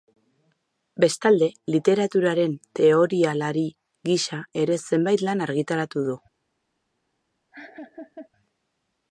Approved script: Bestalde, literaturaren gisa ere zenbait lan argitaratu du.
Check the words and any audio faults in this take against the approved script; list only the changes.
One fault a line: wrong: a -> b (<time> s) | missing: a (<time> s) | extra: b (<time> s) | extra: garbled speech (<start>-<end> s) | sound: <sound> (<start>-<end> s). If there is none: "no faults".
extra: teorialari (2.8 s)
sound: laugh (7.5-8.3 s)